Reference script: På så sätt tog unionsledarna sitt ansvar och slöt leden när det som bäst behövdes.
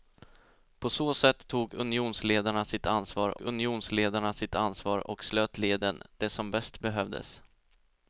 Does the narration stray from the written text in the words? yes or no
yes